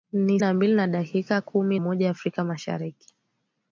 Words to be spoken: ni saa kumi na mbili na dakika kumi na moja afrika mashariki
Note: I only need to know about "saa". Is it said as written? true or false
false